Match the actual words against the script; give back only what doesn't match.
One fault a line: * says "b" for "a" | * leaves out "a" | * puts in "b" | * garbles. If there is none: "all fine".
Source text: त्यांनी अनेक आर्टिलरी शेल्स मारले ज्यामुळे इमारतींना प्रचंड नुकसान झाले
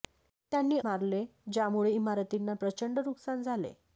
* leaves out "अनेक आर्टिलरी शेल्स"